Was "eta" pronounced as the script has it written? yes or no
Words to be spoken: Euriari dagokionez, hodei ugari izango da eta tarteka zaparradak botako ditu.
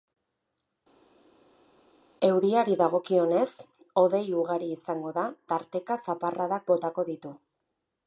no